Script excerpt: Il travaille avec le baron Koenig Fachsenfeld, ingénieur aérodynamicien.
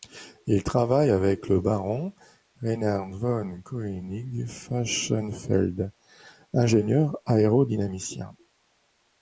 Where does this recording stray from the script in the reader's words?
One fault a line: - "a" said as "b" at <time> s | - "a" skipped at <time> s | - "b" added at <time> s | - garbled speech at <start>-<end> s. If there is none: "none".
- "Reinhard von" added at 2.6 s